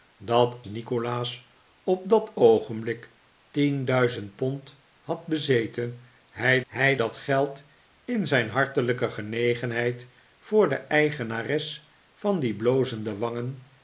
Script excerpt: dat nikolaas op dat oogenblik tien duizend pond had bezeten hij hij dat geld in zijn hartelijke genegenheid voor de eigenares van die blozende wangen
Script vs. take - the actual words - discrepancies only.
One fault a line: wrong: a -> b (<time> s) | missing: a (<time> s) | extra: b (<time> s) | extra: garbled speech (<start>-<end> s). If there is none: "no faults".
no faults